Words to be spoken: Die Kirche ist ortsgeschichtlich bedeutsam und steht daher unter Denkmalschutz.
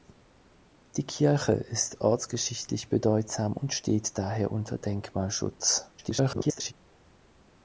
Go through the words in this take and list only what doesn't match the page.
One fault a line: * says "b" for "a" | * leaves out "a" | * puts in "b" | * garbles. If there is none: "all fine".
* garbles